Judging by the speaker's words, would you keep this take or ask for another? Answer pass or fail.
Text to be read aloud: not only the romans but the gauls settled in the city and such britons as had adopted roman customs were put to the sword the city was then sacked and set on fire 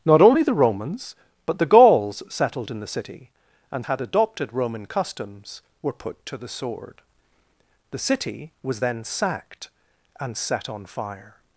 fail